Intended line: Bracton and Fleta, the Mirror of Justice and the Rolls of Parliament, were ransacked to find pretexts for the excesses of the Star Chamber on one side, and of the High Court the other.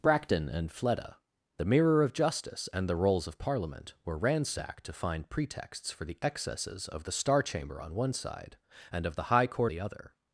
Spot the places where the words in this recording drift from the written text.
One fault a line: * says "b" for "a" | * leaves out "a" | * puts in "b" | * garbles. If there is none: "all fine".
all fine